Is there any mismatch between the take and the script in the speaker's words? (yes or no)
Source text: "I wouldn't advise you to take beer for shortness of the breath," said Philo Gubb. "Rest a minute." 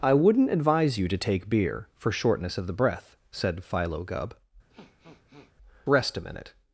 no